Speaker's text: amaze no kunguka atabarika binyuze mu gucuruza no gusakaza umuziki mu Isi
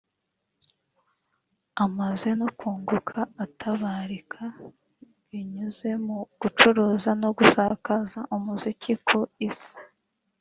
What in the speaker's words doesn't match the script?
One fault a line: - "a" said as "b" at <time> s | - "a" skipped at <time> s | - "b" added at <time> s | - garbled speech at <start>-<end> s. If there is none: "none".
- "mu" said as "ku" at 9.1 s